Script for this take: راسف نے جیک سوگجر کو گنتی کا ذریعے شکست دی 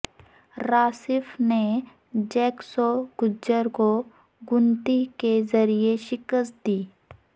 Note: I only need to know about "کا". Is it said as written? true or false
false